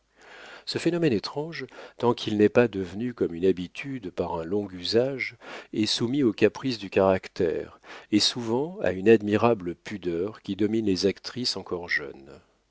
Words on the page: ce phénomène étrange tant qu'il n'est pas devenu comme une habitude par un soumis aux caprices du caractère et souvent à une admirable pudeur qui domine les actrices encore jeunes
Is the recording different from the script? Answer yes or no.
yes